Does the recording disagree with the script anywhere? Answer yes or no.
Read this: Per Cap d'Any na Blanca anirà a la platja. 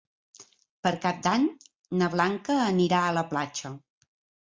no